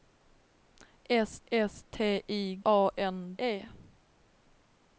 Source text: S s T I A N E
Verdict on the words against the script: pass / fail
pass